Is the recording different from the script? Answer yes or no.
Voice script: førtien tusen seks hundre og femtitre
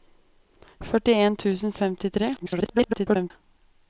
yes